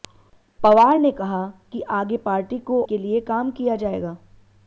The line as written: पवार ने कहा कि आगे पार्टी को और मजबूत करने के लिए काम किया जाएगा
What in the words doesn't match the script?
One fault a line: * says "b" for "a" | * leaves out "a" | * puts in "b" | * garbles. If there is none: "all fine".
* leaves out "और मजबूत करने"